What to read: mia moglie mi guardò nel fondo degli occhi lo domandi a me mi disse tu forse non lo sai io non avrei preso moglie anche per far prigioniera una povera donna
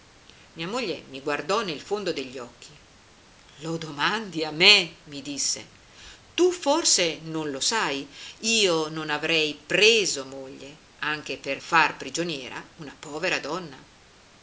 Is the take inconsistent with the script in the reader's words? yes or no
no